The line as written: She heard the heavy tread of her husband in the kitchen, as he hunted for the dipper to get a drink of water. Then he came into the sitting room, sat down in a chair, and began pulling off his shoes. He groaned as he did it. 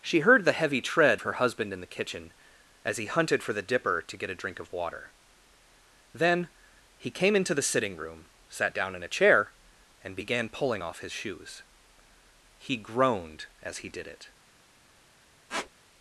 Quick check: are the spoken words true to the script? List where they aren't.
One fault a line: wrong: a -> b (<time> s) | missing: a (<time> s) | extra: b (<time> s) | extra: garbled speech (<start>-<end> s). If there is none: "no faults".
missing: of (1.2 s)